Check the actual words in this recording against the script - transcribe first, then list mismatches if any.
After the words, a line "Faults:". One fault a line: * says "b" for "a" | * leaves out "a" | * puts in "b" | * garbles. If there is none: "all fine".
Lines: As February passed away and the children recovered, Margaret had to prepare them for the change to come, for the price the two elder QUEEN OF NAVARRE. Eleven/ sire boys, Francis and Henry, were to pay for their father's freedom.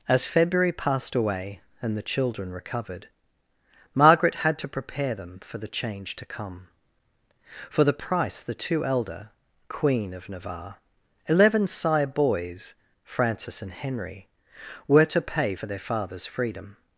As February passed away and the children recovered, Margaret had to prepare them for the change to come, for the price the two elder QUEEN OF NAVARRE. Eleven/ sire boys, Francis and Henry, were to pay for their father's freedom.
Faults:
all fine